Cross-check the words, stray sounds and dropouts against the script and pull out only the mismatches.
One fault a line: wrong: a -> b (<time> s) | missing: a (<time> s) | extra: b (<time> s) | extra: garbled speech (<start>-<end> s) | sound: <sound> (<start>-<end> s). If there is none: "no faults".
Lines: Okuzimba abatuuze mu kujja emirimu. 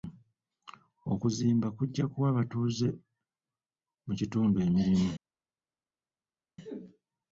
extra: kujja kuwa (1.8 s)
wrong: kujja -> kitundu (4.2 s)